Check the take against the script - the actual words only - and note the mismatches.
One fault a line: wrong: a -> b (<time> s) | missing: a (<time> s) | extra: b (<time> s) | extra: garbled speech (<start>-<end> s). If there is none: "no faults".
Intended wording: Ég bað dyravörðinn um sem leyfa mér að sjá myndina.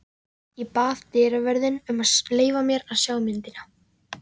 wrong: sem -> að (2.1 s)